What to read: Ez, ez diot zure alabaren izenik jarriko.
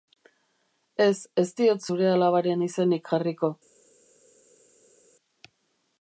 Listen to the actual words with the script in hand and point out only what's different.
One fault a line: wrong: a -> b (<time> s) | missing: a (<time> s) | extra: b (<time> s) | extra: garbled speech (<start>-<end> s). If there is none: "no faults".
no faults